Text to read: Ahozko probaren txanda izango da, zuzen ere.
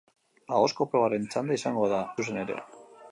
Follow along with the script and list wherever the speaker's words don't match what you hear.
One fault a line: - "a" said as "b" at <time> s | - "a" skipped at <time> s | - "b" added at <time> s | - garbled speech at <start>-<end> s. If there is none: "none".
none